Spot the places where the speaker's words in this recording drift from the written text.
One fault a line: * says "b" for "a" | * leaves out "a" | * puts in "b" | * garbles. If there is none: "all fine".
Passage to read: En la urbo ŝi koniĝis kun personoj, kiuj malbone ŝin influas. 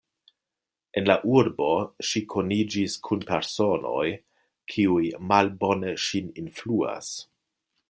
all fine